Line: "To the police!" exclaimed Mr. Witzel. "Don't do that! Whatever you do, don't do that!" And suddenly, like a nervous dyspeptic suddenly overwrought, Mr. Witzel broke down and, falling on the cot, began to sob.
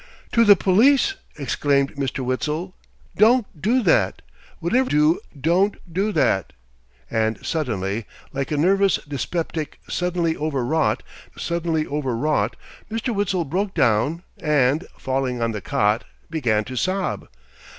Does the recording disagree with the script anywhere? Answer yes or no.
yes